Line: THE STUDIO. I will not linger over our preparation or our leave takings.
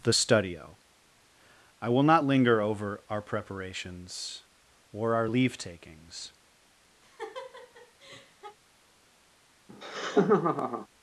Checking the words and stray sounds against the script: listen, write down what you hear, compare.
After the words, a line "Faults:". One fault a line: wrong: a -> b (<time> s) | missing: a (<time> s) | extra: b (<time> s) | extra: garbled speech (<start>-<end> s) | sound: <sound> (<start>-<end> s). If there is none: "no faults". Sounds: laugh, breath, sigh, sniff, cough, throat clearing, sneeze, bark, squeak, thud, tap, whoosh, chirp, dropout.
THE STUDIO. I will not linger over our preparations or our leave takings.
Faults:
wrong: preparation -> preparations (3.2 s)
sound: laugh (7.0-8.6 s)
sound: laugh (9.7-10.9 s)